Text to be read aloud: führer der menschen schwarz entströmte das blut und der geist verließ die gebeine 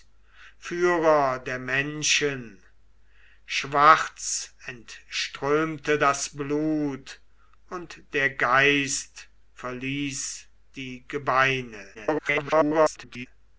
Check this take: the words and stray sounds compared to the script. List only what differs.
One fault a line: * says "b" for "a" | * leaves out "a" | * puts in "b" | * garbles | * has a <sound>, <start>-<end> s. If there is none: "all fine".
* garbles